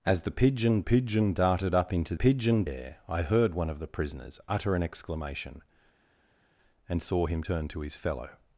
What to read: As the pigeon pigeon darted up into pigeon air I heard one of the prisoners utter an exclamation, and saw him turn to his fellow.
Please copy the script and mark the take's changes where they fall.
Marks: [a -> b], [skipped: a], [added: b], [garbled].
As the pigeon pigeon darted up into pigeon air I heard one of the prisoners utter an exclamation, and saw him turn to his fellow.